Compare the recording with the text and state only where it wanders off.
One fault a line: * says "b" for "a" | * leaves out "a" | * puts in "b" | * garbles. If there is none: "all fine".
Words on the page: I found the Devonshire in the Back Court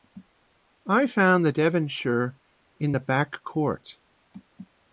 all fine